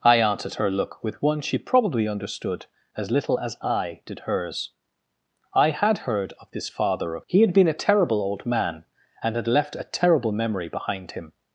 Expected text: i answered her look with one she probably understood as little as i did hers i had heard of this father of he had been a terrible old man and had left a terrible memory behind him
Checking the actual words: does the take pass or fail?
pass